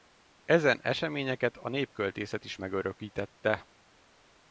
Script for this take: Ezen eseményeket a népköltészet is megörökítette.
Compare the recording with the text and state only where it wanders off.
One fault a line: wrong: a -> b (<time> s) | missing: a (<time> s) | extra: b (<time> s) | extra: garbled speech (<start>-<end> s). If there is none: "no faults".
no faults